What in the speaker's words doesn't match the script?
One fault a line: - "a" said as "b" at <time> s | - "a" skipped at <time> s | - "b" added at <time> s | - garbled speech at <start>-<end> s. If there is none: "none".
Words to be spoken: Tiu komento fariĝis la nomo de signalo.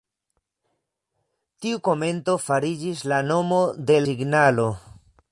none